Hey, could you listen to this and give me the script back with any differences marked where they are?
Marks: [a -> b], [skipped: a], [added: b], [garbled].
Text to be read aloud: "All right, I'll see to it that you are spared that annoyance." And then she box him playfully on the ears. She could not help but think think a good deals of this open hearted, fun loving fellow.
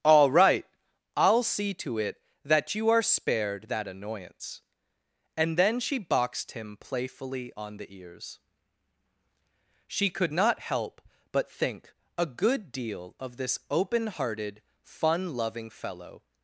"All right, I'll see to it that you are spared that annoyance." And then she [box -> boxed] him playfully on the ears. She could not help but think [skipped: think] a good [deals -> deal] of this open hearted, fun loving fellow.